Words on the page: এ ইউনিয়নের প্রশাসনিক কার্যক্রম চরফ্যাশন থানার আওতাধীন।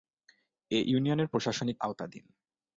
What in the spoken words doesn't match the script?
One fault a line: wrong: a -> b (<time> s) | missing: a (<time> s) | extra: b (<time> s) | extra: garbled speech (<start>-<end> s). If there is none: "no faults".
missing: কার্যক্রম চরফ্যাশন থানার (1.8 s)